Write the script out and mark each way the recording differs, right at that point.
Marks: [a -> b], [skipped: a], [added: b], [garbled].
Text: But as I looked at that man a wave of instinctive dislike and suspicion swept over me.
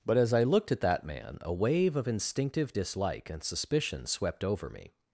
But as I looked at that man a wave of instinctive dislike and suspicion swept over me.